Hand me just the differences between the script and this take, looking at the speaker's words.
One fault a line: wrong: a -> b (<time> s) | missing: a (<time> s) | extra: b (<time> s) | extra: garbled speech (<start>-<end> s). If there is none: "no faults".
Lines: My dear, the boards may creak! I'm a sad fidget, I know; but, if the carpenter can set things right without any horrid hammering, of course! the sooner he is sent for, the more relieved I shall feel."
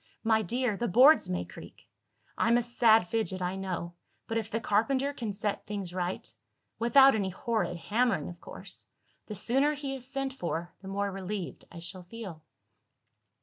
no faults